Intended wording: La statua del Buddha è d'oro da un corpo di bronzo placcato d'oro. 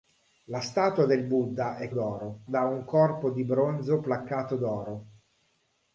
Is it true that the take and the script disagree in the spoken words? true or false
false